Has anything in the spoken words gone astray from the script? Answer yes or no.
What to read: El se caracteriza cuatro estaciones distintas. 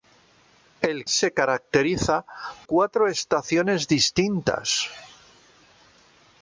no